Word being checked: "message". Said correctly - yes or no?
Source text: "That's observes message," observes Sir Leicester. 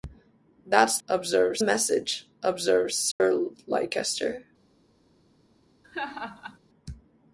yes